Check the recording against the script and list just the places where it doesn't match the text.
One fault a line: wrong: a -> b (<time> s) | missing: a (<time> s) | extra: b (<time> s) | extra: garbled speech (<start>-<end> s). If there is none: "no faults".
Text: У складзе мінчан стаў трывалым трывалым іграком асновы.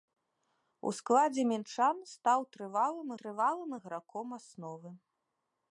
no faults